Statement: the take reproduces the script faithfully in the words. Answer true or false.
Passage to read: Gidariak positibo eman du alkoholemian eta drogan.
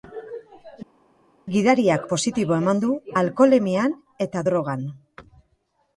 true